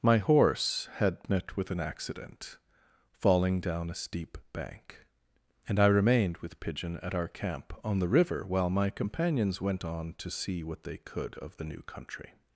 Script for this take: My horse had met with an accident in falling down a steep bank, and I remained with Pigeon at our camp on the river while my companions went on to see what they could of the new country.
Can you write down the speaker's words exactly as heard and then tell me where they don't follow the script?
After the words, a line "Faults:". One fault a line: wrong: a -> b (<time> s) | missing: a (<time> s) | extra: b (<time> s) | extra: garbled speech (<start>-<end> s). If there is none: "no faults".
My horse had met with an accident falling down a steep bank, and I remained with Pigeon at our camp on the river while my companions went on to see what they could of the new country.
Faults:
missing: in (2.6 s)